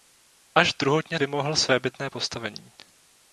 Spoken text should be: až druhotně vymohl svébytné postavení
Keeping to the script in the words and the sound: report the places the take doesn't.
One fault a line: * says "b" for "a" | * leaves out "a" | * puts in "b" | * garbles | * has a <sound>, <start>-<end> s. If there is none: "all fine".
all fine